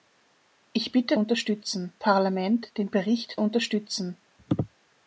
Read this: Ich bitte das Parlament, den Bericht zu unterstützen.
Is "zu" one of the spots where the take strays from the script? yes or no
yes